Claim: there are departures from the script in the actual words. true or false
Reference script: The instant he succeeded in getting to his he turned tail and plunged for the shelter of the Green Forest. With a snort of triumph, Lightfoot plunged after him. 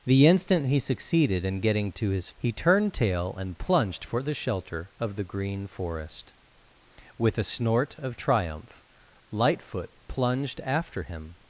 false